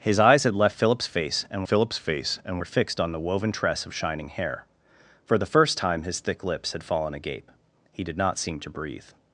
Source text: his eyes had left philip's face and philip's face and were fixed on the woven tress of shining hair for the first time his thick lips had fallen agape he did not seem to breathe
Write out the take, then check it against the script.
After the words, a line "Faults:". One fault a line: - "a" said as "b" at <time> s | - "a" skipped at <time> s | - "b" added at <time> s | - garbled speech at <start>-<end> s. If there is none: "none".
his eyes had left philip's face and philip's face and were fixed on the woven tress of shining hair for the first time his thick lips had fallen agape he did not seem to breathe
Faults:
none